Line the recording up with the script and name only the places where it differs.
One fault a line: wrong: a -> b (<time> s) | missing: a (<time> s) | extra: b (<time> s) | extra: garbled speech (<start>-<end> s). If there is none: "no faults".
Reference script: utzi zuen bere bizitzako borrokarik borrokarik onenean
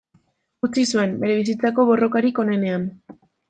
missing: borrokarik (2.5 s)